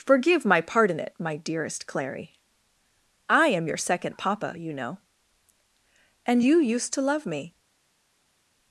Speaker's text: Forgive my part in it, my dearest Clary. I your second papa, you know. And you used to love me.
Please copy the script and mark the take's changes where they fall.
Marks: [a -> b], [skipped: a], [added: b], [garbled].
Forgive my part in it, my dearest Clary. I [added: am] your second papa, you know. And you used to love me.